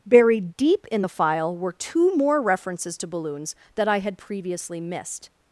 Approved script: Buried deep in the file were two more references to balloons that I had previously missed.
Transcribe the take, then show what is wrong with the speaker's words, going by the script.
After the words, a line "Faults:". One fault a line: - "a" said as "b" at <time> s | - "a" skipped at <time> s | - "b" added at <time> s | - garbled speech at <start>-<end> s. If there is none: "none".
Buried deep in the file were two more references to balloons that I had previously missed.
Faults:
none